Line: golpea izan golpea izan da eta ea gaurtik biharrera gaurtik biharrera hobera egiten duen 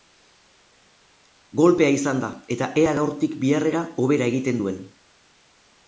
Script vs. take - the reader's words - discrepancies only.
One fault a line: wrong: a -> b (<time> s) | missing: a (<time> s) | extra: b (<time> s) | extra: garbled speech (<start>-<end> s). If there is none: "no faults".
missing: golpea izan (2.2 s)
missing: gaurtik biharrera (3.9 s)